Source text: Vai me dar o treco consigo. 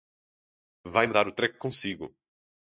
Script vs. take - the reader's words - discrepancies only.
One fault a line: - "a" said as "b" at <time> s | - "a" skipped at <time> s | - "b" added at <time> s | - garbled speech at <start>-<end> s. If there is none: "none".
none